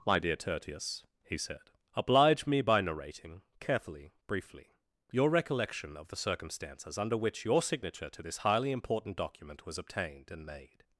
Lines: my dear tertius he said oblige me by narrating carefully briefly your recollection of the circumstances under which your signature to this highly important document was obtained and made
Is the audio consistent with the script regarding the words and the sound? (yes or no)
yes